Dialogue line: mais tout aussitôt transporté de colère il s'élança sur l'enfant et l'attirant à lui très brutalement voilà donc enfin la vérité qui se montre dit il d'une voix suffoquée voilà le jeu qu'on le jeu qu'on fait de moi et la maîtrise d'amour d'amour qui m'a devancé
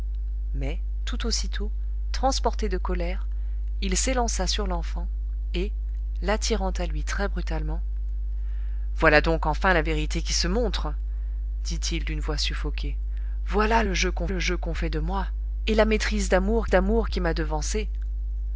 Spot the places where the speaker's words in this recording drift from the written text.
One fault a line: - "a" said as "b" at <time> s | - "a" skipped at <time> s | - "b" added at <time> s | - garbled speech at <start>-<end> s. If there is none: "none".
none